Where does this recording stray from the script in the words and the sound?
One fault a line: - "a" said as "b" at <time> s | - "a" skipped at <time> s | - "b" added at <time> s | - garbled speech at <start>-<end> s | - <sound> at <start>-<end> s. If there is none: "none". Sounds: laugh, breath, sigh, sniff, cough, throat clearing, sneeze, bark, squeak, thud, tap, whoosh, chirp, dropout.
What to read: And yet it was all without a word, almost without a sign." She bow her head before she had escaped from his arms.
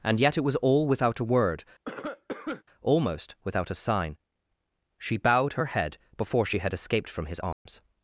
- cough at 1.9-2.6 s
- "bow" said as "bowed" at 5.2 s
- dropout at 7.5-7.7 s